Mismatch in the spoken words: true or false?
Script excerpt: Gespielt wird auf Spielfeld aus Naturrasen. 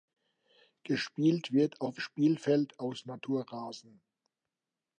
false